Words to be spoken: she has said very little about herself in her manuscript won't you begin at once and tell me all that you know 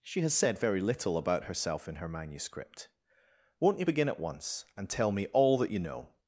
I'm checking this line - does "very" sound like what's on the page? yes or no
yes